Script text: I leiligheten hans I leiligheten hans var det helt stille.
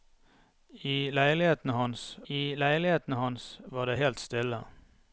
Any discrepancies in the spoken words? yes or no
no